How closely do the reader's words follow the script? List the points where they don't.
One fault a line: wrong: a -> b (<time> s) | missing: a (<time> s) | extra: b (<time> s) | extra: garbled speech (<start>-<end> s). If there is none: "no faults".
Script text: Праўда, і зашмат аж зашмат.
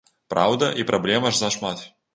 wrong: зашмат -> праблем (0.9 s)